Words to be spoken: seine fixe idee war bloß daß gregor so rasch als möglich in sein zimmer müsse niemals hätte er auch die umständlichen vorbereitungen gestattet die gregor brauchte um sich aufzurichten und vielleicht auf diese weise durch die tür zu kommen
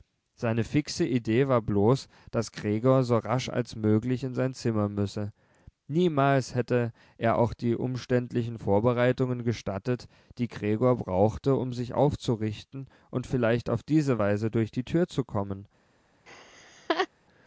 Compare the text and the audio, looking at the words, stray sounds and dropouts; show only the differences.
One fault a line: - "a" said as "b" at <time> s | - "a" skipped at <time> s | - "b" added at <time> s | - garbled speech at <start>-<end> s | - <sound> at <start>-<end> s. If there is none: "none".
- laugh at 16.3-17.1 s